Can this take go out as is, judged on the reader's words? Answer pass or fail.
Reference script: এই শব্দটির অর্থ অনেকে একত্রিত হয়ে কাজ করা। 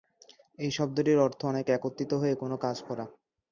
fail